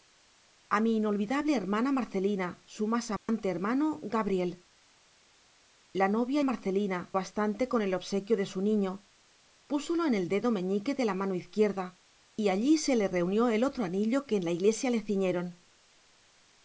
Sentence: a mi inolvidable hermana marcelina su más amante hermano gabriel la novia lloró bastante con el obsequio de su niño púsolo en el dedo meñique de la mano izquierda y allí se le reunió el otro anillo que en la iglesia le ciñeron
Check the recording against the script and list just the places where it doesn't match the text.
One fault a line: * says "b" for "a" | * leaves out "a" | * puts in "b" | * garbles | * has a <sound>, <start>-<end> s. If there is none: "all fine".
* has a dropout, 3.2-3.3 s
* says "marcelina" for "lloró"